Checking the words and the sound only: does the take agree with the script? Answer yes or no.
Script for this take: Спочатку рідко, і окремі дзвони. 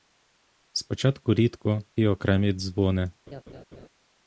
no